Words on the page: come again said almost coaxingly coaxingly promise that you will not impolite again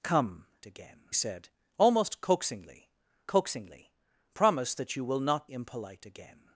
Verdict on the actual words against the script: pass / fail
pass